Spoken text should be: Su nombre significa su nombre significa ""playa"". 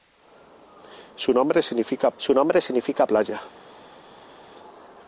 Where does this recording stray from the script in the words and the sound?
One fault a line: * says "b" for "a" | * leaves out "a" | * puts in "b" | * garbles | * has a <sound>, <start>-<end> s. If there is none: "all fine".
all fine